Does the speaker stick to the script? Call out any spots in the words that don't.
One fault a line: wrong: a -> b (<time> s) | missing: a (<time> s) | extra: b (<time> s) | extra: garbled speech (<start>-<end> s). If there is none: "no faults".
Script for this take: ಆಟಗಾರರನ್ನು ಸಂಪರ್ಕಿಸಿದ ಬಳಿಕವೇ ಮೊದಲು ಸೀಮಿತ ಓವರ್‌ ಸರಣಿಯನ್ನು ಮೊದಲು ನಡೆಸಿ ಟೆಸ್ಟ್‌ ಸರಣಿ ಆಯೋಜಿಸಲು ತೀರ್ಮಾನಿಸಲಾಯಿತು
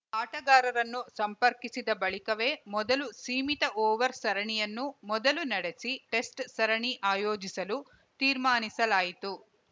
no faults